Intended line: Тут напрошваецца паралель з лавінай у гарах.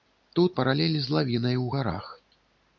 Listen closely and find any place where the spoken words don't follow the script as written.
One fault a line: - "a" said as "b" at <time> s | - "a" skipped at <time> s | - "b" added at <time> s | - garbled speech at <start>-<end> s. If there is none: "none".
- "напрошваецца" skipped at 0.6 s